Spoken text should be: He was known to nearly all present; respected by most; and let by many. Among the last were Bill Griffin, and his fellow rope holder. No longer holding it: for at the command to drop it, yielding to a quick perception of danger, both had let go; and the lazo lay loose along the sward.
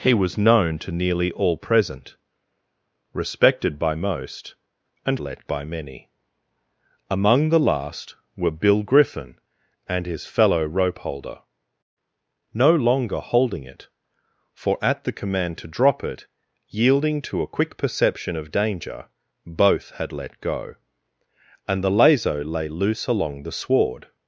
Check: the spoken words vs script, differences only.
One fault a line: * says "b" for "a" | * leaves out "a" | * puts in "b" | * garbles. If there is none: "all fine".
all fine